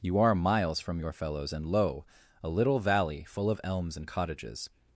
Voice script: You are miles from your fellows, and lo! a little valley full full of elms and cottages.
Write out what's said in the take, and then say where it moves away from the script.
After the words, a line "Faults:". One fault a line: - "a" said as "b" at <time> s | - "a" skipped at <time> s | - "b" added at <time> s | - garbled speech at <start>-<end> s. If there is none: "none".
You are miles from your fellows, and lo! a little valley full of elms and cottages.
Faults:
- "full" skipped at 3.5 s